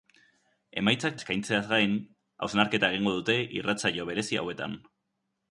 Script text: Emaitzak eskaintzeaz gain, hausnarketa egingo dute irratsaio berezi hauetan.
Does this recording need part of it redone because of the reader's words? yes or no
no